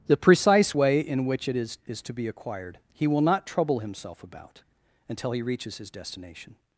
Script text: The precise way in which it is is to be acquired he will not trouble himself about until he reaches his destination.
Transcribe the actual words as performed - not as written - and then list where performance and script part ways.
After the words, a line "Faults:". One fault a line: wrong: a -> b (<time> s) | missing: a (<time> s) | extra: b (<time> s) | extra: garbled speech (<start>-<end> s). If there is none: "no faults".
The precise way in which it is is to be acquired he will not trouble himself about until he reaches his destination.
Faults:
no faults